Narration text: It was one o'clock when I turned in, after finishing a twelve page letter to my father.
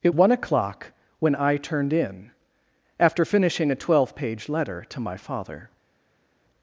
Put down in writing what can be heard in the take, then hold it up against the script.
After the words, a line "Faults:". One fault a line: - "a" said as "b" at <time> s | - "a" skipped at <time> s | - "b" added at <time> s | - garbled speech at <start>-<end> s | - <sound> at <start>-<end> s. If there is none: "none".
It one o'clock when I turned in, after finishing a twelve page letter to my father.
Faults:
- "was" skipped at 0.1 s